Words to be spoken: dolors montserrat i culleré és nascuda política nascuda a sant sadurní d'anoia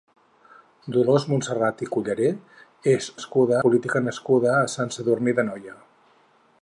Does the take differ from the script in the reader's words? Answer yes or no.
no